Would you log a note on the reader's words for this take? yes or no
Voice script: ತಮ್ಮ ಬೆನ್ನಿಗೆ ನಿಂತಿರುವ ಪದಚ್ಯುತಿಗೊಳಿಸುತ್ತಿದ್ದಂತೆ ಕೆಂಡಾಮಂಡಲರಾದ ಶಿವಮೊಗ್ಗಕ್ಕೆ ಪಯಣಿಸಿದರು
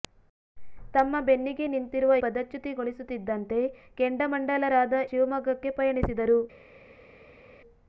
no